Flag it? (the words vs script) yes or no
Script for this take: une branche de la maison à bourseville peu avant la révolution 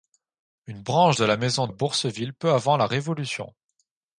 no